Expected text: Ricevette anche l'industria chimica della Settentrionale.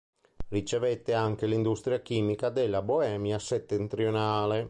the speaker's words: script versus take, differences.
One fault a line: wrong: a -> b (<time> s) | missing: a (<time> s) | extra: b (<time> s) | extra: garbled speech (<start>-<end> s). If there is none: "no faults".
extra: Boemia (2.8 s)